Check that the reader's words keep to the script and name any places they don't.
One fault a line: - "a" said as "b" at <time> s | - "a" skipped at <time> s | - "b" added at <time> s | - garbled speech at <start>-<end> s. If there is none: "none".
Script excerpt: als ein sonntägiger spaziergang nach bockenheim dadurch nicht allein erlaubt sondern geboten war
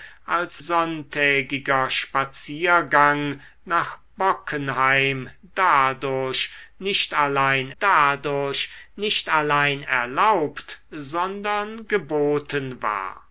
- "ein" skipped at 0.6 s
- "dadurch nicht allein" added at 7.8 s